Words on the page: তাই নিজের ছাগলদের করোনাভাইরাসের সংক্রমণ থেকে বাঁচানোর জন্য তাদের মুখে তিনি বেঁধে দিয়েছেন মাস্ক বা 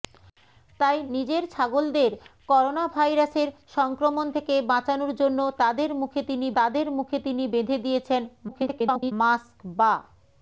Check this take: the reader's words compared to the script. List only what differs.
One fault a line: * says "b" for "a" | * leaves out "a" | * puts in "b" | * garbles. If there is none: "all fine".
* puts in "তাদের মুখে তিনি"
* garbles